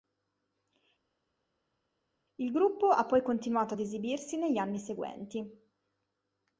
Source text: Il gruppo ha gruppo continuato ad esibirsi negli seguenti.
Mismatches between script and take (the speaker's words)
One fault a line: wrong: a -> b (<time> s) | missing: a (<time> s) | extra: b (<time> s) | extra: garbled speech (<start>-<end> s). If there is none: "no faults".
wrong: gruppo -> poi (3.0 s)
extra: anni (4.6 s)